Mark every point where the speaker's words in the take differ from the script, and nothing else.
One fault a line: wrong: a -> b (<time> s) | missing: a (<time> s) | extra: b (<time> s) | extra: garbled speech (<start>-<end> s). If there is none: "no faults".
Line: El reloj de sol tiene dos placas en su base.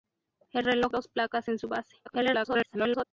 missing: de sol tiene (0.9 s)
extra: garbled speech (2.1-3.0 s)